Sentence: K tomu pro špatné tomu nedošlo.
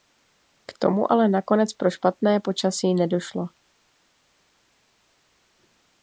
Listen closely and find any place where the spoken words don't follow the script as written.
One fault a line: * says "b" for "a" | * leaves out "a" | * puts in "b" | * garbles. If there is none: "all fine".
* puts in "ale nakonec"
* says "počasí" for "tomu"